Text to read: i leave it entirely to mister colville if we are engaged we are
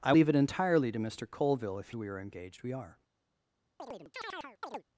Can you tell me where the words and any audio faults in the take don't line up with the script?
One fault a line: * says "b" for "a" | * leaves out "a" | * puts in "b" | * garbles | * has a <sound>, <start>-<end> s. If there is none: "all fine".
* has a chirp, 3.8-4.8 s